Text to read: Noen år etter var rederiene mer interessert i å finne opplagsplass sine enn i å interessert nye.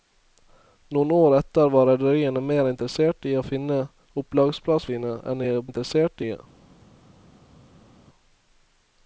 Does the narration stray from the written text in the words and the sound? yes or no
no